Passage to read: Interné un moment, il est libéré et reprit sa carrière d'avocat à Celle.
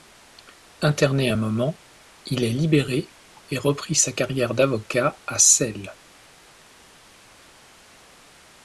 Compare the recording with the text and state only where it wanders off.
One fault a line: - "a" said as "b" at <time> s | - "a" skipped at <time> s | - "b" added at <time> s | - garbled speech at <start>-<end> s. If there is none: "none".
none